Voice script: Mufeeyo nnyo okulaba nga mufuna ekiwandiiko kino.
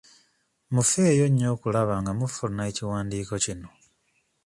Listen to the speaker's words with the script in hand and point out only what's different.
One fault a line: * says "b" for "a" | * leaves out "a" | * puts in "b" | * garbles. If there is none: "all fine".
all fine